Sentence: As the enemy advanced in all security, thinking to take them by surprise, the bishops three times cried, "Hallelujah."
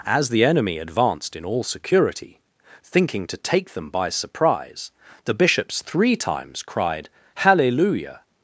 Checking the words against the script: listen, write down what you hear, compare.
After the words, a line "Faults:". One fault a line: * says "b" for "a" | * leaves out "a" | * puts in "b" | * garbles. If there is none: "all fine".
As the enemy advanced in all security, thinking to take them by surprise, the bishops three times cried, "Hallelujah."
Faults:
all fine